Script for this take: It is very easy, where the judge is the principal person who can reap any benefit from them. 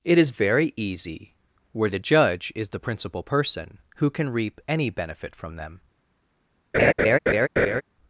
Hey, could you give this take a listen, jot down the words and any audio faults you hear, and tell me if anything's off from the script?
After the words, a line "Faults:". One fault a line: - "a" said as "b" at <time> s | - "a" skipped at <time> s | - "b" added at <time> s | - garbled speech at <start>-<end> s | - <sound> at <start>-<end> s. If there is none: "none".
It is very easy, where the judge is the principal person who can reap any benefit from them.
Faults:
- laugh at 6.7-7.8 s